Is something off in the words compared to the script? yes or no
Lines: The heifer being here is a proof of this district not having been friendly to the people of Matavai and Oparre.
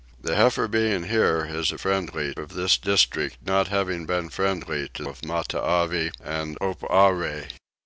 yes